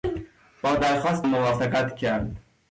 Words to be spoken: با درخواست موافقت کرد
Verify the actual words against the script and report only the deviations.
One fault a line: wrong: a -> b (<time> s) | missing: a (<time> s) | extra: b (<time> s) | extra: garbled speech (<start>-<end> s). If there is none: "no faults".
no faults